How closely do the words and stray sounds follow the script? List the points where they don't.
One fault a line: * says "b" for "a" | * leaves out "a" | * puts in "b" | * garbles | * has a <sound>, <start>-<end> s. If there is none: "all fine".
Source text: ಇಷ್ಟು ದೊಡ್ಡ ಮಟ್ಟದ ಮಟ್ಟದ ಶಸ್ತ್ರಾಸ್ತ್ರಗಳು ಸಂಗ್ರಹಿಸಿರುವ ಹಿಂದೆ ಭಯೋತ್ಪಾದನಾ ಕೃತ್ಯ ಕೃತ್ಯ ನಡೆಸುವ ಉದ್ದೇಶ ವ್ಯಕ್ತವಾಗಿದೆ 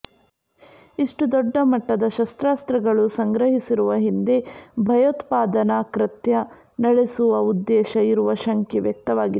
* leaves out "ಮಟ್ಟದ"
* leaves out "ಕೃತ್ಯ"
* puts in "ಇರುವ ಶಂಕೆ"